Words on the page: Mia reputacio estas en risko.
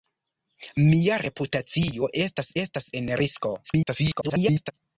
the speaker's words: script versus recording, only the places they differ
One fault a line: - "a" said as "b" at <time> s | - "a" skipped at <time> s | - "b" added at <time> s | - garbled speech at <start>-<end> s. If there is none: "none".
- "estas" added at 2.6 s
- garbled speech at 3.6-4.7 s